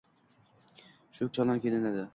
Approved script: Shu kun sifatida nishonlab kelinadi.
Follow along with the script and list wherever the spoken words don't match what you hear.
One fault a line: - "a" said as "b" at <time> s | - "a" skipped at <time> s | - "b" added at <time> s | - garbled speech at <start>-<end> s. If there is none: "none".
- "kun sifatida" skipped at 1.3 s